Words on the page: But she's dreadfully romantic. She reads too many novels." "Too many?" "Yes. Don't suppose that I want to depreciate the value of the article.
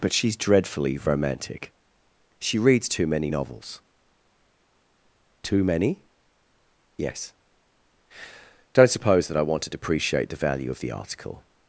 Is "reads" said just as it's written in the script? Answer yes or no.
yes